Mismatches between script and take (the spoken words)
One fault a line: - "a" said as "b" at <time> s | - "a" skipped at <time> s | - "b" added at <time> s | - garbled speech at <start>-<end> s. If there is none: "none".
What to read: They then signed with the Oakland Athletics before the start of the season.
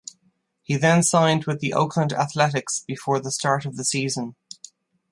- "They" said as "He" at 0.6 s